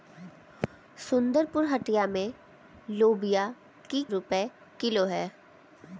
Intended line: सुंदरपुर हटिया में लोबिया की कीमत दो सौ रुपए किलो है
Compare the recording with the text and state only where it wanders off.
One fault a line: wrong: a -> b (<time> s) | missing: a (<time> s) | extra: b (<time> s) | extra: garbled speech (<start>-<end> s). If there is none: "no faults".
missing: कीमत दो सौ (4.0 s)